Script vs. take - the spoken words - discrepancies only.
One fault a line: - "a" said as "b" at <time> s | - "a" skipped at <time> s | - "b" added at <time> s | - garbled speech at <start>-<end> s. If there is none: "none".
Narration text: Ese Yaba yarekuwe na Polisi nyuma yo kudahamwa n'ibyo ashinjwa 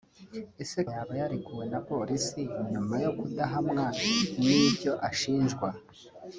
none